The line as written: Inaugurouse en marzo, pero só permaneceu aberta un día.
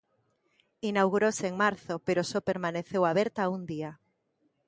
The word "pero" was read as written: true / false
true